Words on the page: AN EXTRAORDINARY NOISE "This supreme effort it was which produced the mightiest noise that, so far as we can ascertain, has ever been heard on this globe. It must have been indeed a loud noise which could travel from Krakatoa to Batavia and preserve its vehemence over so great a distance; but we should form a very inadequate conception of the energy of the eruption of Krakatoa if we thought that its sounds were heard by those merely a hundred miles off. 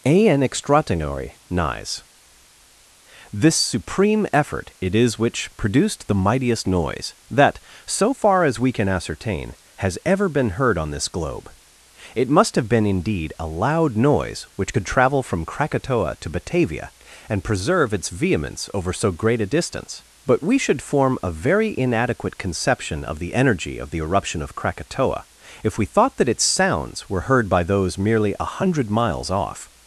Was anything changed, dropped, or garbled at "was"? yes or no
yes